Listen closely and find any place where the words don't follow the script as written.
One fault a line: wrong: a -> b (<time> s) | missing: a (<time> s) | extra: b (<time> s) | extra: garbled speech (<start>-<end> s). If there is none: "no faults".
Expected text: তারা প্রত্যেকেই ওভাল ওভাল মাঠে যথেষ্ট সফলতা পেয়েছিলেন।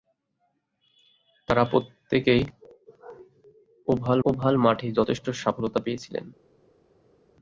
no faults